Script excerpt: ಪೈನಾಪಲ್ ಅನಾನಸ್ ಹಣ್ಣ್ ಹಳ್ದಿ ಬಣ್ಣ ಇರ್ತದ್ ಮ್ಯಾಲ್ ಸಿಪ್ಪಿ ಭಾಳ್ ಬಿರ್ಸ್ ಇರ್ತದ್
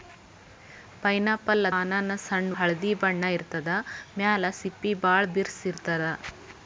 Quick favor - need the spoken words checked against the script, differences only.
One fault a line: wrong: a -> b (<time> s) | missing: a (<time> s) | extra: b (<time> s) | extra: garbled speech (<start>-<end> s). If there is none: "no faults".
no faults